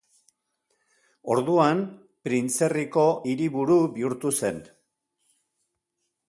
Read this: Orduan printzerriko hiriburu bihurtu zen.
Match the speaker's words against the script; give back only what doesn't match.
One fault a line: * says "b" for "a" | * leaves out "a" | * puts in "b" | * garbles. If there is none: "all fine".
all fine